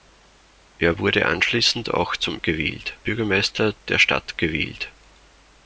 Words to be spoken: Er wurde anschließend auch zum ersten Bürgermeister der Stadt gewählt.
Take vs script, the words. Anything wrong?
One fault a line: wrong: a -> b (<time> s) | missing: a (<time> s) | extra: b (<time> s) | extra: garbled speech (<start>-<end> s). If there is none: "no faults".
wrong: ersten -> gewählt (2.4 s)